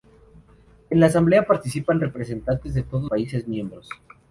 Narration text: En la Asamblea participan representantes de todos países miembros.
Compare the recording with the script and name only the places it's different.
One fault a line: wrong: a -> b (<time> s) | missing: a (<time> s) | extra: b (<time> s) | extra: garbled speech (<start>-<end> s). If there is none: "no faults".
no faults